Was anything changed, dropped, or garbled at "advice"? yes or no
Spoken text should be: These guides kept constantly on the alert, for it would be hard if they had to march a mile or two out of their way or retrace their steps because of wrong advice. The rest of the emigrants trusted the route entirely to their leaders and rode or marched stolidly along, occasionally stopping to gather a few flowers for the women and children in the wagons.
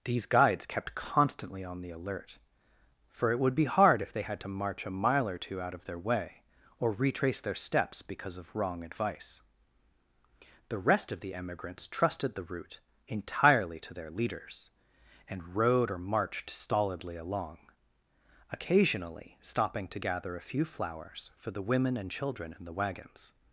no